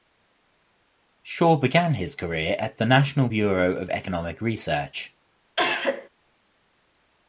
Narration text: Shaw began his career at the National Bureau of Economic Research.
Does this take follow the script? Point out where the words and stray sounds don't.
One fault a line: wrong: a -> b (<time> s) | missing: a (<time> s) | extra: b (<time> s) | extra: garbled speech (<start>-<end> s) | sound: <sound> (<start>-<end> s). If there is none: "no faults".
sound: cough (5.6-6.1 s)